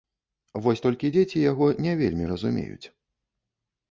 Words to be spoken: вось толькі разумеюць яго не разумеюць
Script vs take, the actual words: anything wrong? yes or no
yes